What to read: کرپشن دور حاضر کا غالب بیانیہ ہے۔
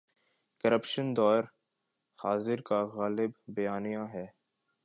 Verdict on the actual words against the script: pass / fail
pass